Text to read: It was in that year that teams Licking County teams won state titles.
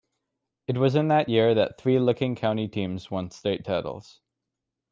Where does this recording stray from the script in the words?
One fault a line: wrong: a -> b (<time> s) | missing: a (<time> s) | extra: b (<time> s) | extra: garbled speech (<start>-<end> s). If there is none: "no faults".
wrong: teams -> three (1.8 s)